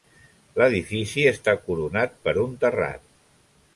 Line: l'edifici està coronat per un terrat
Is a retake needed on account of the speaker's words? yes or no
no